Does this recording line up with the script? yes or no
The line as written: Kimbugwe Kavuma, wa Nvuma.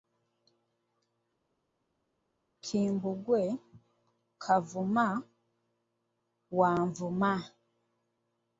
yes